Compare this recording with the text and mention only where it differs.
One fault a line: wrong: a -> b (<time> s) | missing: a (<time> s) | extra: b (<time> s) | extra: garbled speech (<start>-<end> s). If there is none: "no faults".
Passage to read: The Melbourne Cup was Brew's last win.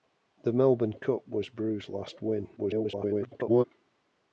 extra: garbled speech (2.6-3.6 s)